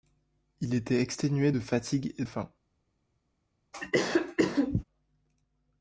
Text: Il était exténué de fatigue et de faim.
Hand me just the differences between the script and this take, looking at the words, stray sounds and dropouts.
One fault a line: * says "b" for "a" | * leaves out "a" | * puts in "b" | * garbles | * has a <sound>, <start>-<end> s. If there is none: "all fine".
* leaves out "de"
* has a cough, 3.7-4.8 s